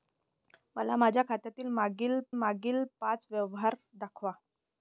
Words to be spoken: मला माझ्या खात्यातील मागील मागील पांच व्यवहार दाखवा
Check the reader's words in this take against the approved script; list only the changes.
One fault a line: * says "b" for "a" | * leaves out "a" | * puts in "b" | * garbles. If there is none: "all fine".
all fine